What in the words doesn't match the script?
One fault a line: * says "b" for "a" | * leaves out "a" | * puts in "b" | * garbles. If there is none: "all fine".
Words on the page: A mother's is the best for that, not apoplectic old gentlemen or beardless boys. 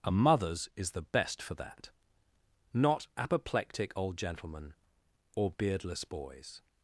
all fine